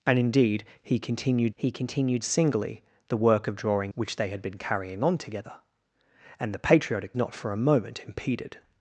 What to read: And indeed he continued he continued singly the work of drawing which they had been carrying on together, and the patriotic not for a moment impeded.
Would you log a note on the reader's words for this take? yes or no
no